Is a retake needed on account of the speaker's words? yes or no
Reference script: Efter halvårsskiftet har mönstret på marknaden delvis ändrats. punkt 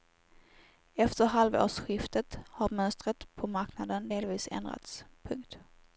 no